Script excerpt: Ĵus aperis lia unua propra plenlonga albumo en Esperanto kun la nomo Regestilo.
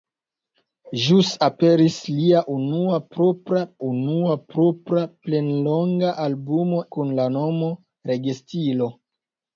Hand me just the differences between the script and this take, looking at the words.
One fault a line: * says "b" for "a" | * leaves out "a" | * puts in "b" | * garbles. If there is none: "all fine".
* puts in "unua propra"
* leaves out "en Esperanto"